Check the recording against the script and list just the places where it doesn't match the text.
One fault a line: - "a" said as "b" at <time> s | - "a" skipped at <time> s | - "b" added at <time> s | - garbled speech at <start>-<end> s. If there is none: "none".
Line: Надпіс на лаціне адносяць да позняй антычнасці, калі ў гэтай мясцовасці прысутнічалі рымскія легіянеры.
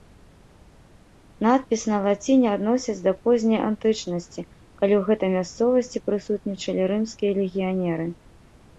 none